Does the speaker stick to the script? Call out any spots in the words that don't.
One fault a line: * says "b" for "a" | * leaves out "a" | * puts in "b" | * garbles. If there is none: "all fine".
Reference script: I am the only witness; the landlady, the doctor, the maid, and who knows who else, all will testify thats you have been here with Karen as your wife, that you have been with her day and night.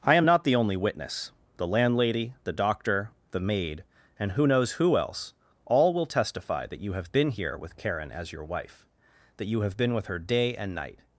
* puts in "not"
* says "that" for "thats"